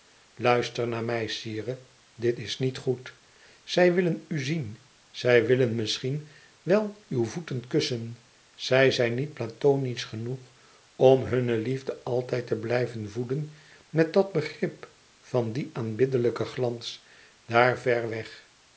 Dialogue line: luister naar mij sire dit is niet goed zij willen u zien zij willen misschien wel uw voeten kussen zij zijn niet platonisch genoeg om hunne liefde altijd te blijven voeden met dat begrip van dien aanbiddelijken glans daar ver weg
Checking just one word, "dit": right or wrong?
right